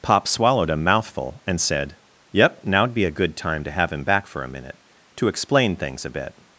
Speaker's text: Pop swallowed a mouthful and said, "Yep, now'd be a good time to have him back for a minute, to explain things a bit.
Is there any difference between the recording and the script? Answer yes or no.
no